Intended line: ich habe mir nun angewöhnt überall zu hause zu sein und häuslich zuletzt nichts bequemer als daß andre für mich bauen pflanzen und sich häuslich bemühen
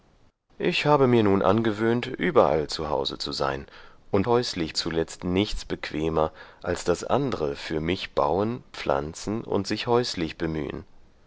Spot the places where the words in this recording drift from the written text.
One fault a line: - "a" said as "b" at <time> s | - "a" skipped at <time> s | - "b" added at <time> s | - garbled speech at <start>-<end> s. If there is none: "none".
none